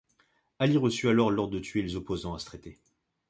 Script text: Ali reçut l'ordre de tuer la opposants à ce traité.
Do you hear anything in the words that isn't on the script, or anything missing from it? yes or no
yes